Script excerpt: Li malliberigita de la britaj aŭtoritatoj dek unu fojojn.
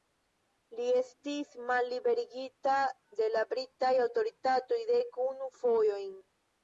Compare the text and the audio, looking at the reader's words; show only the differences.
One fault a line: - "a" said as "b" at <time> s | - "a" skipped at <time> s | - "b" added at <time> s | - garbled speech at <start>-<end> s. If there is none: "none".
- "estis" added at 1.0 s